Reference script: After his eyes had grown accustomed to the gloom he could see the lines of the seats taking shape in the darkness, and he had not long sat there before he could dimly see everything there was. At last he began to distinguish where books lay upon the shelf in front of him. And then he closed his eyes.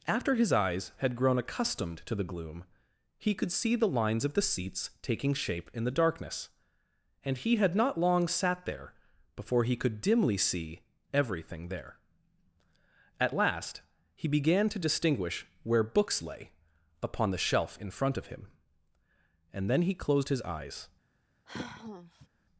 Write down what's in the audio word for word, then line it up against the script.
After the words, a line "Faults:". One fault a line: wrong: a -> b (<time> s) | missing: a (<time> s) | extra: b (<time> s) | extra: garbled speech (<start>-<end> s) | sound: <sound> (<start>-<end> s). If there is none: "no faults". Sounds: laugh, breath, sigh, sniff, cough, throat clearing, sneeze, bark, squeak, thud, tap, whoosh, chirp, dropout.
After his eyes had grown accustomed to the gloom he could see the lines of the seats taking shape in the darkness, and he had not long sat there before he could dimly see everything there. At last he began to distinguish where books lay upon the shelf in front of him. And then he closed his eyes.
Faults:
missing: was (12.0 s)
sound: sigh (21.5-22.3 s)